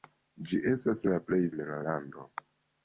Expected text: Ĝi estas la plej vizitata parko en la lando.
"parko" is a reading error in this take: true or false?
true